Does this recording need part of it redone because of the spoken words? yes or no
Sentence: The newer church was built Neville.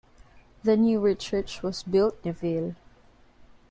no